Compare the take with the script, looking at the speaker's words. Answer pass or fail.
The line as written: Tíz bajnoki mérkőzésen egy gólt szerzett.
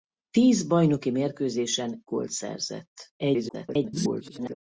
fail